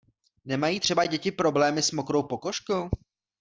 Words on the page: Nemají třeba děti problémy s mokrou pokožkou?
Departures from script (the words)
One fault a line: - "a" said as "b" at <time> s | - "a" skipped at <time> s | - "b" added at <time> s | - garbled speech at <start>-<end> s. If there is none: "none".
none